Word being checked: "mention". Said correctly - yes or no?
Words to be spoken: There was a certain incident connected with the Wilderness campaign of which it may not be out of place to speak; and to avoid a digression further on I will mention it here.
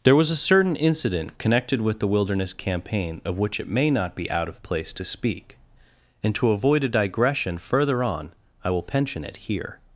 no